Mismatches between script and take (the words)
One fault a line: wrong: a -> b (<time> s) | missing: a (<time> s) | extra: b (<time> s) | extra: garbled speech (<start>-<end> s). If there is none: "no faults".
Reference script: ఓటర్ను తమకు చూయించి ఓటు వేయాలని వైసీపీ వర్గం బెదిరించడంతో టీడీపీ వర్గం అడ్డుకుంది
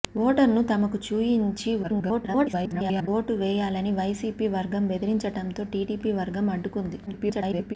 extra: garbled speech (1.8-3.1 s)
extra: garbled speech (7.1-7.7 s)